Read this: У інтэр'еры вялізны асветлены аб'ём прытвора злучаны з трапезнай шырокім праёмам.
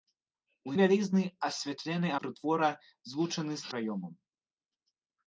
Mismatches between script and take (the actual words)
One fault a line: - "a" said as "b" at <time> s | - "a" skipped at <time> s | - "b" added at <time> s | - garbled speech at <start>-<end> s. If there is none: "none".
- "інтэр'еры" skipped at 0.7 s
- "аб'ём" skipped at 2.1 s
- "трапезнай шырокім" skipped at 3.7 s